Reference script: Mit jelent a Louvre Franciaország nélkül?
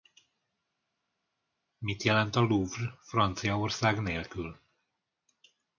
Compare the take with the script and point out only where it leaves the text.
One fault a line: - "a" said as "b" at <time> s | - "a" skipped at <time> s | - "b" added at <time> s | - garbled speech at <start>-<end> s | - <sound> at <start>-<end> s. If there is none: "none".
none